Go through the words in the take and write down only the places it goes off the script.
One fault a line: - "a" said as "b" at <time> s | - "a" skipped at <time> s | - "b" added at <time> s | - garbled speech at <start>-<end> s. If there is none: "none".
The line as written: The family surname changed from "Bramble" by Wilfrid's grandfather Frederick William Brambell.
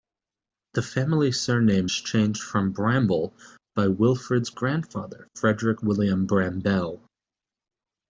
none